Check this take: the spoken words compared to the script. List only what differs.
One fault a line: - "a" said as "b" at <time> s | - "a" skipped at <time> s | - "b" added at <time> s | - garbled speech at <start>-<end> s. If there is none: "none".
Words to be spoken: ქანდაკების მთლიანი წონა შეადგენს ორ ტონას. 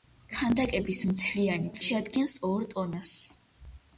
- "წონა" skipped at 1.7 s